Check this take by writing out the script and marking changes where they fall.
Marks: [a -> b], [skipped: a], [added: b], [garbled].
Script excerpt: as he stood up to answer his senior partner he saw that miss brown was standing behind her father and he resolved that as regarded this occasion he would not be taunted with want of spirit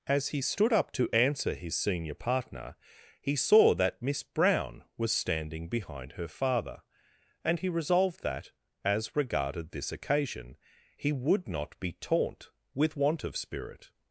as he stood up to answer his senior partner he saw that miss brown was standing behind her father and he resolved that as regarded this occasion he would not be [taunted -> taunt] with want of spirit